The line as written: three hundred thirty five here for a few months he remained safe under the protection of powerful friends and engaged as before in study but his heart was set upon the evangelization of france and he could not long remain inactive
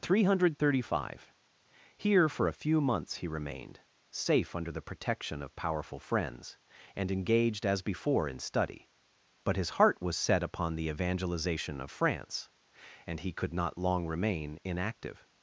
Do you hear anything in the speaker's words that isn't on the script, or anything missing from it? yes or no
no